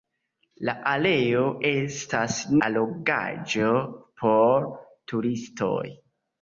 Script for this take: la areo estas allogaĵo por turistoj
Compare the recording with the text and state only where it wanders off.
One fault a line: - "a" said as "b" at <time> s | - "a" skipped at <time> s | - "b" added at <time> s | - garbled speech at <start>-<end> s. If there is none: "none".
none